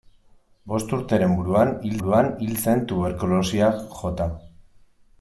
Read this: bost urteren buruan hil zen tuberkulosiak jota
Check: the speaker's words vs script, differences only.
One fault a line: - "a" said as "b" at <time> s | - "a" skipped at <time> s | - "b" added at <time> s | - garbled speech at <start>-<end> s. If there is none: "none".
- "buruan hil" added at 2.0 s